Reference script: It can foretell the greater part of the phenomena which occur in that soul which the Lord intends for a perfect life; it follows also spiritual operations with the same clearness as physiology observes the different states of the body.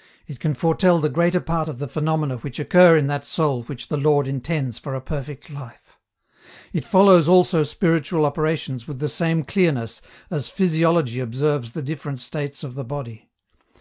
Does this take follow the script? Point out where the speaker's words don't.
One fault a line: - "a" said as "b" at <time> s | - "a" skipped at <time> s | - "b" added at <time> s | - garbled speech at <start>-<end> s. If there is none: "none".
none